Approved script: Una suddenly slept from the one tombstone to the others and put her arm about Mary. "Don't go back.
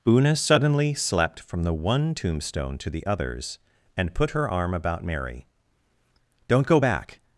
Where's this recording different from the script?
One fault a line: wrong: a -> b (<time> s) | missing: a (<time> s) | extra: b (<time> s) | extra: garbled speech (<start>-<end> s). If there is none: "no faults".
no faults